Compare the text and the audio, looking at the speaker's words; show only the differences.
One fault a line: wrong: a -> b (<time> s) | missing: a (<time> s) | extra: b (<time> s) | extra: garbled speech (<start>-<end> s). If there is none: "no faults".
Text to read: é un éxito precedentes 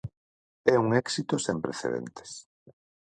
extra: sen (1.5 s)